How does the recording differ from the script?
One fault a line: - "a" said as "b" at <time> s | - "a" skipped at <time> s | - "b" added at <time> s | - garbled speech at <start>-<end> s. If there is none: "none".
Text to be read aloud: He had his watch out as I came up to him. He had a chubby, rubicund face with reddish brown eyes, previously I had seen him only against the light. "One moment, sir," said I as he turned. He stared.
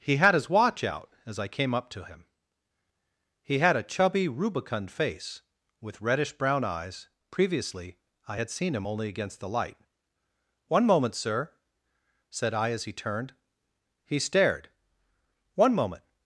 - "One moment" added at 15.5 s